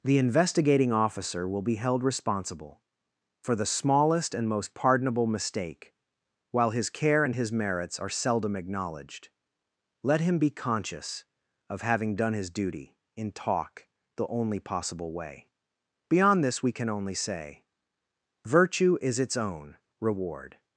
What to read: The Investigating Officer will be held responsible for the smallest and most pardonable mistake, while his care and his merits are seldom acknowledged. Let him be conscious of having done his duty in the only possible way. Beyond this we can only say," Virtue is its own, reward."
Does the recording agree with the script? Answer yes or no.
no